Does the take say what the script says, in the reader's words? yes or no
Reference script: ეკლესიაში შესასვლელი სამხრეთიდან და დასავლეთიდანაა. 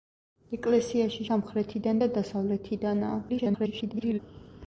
no